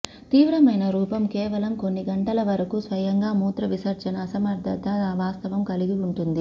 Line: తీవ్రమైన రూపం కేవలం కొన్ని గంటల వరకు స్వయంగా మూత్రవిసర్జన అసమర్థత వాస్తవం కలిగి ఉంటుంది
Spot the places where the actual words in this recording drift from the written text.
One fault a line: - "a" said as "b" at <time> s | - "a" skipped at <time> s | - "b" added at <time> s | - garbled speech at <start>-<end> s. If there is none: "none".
none